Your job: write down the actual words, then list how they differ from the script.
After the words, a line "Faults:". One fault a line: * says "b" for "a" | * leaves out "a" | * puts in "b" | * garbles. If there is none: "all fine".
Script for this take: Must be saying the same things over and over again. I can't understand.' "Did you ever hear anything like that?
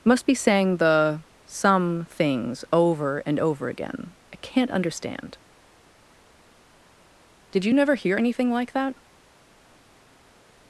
Must be saying the some things over and over again. I can't understand.' "Did you never hear anything like that?
Faults:
* says "some" for "same"
* says "never" for "ever"